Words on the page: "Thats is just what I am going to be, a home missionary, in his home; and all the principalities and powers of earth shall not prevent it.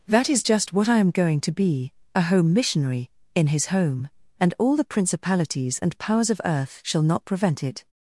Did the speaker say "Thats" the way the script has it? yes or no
no